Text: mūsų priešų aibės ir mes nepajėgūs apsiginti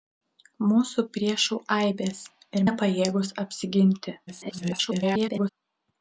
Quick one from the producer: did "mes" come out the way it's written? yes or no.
no